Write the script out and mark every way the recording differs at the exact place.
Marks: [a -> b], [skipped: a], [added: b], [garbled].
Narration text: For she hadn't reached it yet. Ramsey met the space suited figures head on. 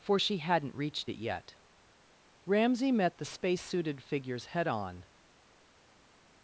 For she hadn't reached it yet. Ramsey met the space suited figures head on.